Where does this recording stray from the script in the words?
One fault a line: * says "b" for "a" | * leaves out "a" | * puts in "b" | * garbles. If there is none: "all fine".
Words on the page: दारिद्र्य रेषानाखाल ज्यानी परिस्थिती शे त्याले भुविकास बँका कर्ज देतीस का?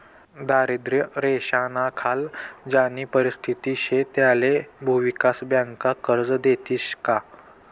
all fine